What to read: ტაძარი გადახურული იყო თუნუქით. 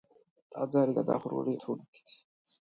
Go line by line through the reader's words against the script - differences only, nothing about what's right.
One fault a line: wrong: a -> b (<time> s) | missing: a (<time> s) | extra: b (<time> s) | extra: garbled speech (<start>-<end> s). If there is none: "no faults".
missing: იყო (1.6 s)